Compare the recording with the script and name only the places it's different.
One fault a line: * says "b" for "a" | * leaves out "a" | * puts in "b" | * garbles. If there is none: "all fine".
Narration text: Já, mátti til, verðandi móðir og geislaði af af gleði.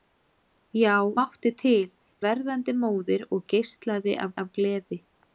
all fine